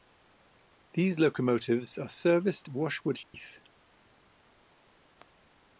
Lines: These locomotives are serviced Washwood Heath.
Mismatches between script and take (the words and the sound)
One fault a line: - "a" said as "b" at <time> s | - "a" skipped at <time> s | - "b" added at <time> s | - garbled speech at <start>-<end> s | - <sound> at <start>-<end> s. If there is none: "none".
- dropout at 3.2-3.3 s